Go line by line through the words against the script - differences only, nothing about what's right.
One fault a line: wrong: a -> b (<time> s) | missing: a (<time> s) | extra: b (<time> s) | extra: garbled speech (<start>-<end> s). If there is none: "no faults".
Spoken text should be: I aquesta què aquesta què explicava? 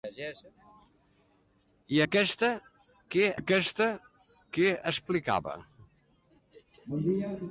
no faults